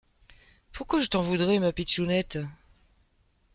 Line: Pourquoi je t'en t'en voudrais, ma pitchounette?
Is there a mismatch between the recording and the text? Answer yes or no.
yes